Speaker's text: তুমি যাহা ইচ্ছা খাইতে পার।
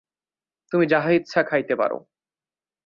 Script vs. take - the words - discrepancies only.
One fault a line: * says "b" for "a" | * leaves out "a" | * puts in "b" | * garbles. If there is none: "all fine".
all fine